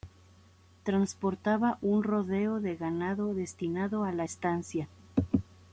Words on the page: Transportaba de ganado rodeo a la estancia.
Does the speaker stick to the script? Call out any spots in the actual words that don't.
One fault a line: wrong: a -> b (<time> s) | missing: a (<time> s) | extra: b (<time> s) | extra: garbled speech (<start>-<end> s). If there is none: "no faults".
extra: un rodeo (1.8 s)
wrong: rodeo -> destinado (3.3 s)